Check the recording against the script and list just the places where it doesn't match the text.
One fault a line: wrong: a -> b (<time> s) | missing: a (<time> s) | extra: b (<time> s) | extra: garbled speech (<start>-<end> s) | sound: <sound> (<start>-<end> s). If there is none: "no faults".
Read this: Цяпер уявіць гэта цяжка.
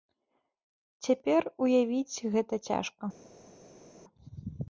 no faults